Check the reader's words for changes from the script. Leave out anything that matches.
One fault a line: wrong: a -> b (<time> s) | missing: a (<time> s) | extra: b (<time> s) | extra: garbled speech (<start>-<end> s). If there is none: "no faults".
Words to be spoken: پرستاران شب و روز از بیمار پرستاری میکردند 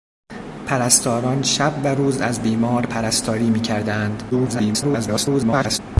extra: garbled speech (4.3-5.8 s)